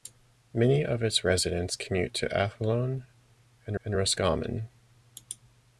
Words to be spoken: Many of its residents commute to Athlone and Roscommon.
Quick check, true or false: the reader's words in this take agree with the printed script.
false